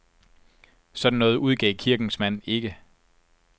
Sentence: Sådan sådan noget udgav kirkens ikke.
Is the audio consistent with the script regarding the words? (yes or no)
no